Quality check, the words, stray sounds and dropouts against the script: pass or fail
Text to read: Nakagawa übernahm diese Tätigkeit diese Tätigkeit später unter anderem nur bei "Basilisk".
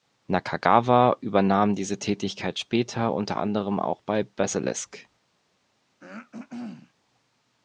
fail